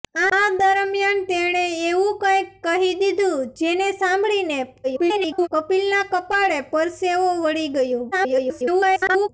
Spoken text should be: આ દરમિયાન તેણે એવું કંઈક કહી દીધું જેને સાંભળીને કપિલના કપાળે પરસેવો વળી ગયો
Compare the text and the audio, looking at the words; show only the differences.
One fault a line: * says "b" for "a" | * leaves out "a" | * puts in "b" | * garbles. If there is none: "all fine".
* garbles
* garbles